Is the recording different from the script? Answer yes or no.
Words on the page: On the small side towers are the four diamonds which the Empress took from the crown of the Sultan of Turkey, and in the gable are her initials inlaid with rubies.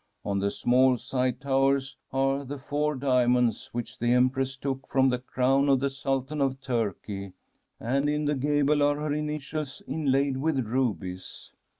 no